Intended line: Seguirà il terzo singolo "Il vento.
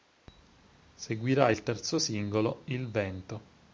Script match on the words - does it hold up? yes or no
yes